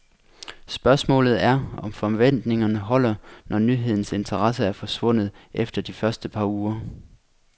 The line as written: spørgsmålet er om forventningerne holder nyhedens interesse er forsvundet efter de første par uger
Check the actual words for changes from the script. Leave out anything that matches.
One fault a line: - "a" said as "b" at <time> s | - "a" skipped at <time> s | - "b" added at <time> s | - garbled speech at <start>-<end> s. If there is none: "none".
- "når" added at 3.5 s